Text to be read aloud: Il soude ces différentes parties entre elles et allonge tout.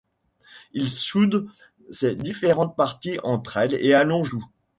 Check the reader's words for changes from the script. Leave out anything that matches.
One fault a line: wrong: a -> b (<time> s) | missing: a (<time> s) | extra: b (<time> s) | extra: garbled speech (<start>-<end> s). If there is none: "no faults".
no faults